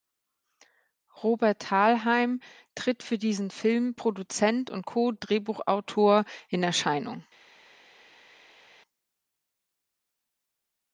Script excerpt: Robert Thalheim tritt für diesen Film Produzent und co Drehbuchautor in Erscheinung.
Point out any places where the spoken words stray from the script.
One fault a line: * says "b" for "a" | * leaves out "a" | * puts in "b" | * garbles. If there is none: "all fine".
all fine